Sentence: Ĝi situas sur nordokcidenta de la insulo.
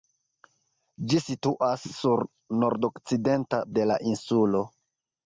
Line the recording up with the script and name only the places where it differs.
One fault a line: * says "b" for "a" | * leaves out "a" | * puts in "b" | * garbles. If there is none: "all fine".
all fine